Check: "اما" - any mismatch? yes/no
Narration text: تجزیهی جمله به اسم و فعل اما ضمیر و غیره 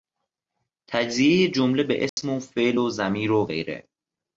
yes